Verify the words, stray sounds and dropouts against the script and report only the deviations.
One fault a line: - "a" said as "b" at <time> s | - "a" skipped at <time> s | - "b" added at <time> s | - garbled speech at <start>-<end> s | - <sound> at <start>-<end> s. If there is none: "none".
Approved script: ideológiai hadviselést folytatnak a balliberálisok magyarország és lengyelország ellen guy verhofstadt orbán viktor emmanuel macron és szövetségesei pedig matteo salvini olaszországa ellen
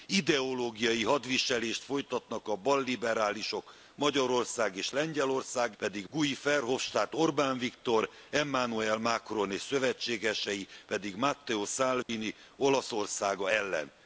- "ellen" said as "pedig" at 5.8 s
- dropout at 12.0-12.1 s